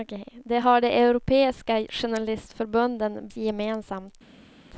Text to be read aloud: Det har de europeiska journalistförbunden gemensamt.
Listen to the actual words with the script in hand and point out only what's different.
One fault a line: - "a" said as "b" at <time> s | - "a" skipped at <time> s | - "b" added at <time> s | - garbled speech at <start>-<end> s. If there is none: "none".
none